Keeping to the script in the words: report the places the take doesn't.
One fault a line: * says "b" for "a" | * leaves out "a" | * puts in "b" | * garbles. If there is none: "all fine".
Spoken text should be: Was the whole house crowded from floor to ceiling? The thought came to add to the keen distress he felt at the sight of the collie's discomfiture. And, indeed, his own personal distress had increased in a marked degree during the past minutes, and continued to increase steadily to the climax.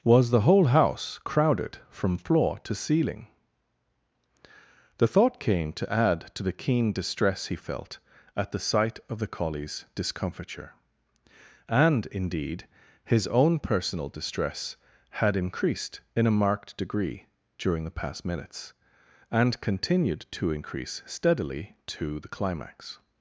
all fine